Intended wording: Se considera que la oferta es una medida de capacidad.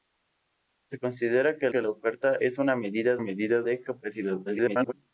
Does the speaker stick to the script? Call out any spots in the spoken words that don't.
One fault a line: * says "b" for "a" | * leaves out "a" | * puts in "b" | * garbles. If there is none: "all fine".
* puts in "que"
* puts in "medida"
* garbles